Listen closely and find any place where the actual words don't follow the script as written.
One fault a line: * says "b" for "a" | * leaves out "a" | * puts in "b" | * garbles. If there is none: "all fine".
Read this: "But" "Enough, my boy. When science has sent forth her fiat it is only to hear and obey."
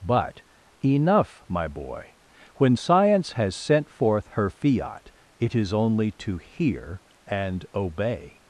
all fine